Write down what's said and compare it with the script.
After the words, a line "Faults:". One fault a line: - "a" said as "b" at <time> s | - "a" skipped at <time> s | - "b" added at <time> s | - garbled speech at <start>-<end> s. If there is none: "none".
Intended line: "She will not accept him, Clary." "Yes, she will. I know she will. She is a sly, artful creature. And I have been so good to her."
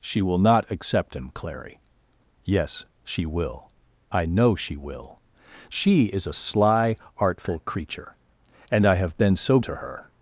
"She will not accept him, Clary." "Yes, she will. I know she will. She is a sly, artful creature. And I have been so to her."
Faults:
- "good" skipped at 9.6 s